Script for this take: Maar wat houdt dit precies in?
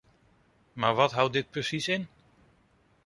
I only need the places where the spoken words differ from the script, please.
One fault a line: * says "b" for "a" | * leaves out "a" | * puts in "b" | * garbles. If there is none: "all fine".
all fine